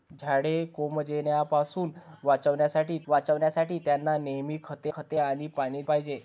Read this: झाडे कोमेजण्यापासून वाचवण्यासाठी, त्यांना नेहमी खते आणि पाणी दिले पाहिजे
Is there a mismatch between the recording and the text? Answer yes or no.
yes